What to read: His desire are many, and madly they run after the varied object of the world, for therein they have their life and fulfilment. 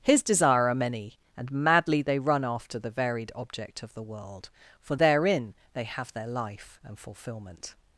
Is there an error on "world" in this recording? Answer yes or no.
no